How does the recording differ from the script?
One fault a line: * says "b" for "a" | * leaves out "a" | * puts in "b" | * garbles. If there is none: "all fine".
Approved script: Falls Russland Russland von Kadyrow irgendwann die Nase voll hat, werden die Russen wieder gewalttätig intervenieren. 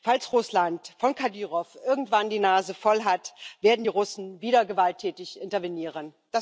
* leaves out "Russland"